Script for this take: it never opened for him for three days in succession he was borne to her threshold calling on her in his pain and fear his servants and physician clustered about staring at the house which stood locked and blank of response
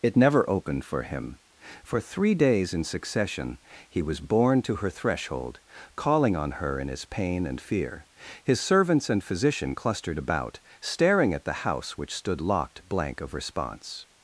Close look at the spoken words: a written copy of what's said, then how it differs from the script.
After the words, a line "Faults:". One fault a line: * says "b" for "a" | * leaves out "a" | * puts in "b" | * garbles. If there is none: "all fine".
it never opened for him for three days in succession he was borne to her threshold calling on her in his pain and fear his servants and physician clustered about staring at the house which stood locked blank of response
Faults:
* leaves out "and"